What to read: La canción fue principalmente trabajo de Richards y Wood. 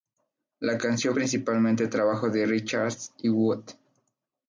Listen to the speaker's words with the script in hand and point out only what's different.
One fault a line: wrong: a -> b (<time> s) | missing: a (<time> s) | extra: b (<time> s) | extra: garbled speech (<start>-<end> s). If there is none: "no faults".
missing: fue (1.1 s)